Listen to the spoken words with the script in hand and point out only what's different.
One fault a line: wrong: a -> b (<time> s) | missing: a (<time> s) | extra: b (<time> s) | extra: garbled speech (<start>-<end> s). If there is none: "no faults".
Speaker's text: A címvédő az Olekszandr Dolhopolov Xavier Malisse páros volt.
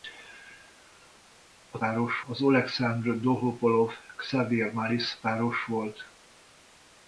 wrong: címvédő -> páros (1.8 s)